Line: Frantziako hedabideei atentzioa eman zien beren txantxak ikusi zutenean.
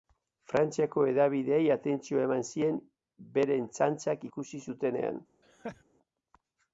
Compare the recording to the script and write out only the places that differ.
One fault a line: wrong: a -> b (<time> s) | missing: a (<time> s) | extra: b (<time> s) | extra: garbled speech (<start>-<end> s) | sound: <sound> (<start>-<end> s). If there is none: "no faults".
sound: laugh (5.4-5.8 s)